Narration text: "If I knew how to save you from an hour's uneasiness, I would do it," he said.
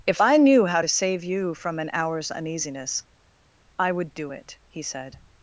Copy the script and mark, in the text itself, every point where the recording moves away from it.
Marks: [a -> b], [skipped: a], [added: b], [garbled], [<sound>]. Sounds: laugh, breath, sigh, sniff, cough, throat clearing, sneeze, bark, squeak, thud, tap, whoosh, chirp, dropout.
"If I knew how to save you from an hour's uneasiness, I would do it," he said.